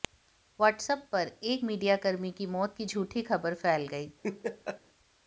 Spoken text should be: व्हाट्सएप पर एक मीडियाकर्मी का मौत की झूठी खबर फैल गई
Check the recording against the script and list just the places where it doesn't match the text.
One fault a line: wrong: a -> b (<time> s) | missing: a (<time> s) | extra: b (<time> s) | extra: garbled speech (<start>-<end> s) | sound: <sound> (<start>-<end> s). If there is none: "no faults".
wrong: का -> की (2.3 s)
sound: laugh (4.2-4.8 s)